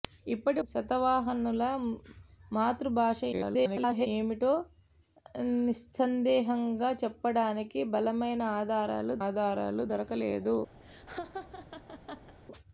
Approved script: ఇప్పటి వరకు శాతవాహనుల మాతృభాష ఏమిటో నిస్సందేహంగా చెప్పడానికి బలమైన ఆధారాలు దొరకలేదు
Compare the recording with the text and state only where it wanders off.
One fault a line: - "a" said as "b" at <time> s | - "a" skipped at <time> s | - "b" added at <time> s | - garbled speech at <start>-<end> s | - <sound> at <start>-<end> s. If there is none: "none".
- "వరకు" skipped at 0.6 s
- garbled speech at 3.3-4.1 s
- "ఆధారాలు" added at 9.2 s
- laugh at 10.8-12.3 s